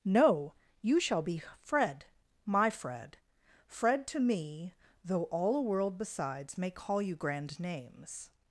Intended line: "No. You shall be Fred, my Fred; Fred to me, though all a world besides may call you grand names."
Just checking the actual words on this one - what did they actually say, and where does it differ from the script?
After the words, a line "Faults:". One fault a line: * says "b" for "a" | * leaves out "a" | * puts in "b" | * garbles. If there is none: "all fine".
"No. You shall be Fred, my Fred; Fred to me, though all a world besides may call you grand names."
Faults:
all fine